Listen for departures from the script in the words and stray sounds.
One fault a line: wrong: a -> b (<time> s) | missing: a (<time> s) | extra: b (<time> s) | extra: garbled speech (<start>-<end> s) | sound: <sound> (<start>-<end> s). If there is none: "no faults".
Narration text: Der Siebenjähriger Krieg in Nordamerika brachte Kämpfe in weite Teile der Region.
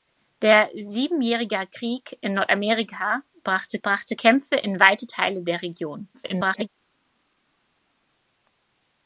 extra: brachte (3.8 s)
extra: garbled speech (6.1-6.7 s)